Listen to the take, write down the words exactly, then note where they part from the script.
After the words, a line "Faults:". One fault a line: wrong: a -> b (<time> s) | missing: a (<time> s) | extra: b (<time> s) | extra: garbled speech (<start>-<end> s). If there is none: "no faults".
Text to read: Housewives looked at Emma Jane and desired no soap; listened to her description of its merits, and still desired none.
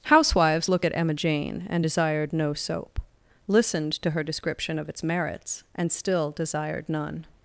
Housewives look at Emma Jane and desired no soap; listened to her description of its merits, and still desired none.
Faults:
wrong: looked -> look (0.7 s)